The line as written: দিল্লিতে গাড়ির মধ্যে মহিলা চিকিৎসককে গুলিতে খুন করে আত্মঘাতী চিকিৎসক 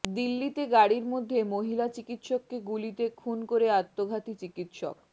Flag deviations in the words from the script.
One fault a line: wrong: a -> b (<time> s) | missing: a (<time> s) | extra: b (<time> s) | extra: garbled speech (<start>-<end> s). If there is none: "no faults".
no faults